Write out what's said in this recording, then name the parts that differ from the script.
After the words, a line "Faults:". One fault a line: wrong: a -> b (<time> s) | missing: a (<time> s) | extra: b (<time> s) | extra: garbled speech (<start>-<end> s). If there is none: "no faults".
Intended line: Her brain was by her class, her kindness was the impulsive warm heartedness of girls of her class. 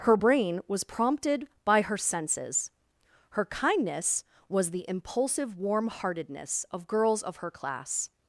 Her brain was prompted by her senses, her kindness was the impulsive warm heartedness of girls of her class.
Faults:
extra: prompted (0.8 s)
wrong: class -> senses (2.0 s)